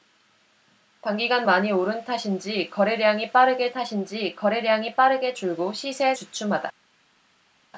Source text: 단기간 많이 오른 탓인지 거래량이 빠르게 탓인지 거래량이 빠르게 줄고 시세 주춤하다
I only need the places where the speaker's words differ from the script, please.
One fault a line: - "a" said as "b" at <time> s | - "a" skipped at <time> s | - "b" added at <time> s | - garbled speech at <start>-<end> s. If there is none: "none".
none